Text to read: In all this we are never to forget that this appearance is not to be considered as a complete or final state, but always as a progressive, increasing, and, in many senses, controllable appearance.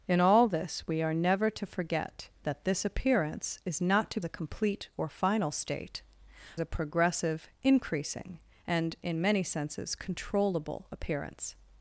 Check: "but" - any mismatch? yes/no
yes